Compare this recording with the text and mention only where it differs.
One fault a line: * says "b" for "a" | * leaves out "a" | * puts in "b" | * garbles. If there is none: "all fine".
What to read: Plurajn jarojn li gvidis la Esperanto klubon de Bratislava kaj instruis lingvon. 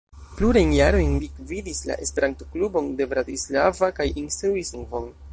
all fine